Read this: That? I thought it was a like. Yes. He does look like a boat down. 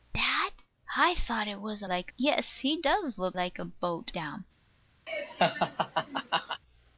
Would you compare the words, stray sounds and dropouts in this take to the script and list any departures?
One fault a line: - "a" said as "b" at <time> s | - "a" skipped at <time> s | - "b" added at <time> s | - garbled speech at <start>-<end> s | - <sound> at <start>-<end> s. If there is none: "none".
- laugh at 5.1-6.6 s